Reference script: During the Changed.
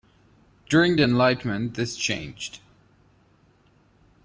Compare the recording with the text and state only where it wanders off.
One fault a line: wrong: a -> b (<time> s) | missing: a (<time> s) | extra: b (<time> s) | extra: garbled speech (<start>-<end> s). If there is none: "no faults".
extra: Enlightenment this (1.0 s)